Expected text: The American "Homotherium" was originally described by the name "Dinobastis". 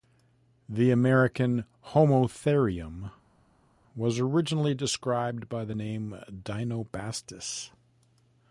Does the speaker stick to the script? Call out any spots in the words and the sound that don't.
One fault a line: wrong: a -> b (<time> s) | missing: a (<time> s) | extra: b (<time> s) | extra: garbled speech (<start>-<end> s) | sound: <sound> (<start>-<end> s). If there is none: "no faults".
no faults